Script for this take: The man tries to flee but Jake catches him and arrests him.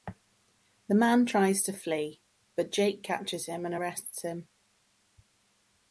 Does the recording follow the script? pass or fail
pass